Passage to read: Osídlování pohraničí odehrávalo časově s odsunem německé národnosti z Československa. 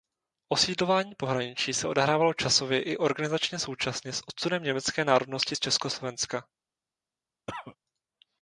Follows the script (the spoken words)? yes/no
no